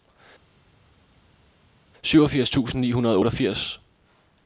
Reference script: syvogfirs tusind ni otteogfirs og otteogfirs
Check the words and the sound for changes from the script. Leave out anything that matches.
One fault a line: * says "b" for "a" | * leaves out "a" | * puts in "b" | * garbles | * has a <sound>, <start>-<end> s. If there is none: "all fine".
* says "hundrede" for "otteogfirs"